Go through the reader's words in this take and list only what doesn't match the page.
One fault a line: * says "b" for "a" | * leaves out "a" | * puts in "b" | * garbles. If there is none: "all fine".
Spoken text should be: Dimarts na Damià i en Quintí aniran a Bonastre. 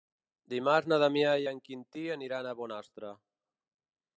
all fine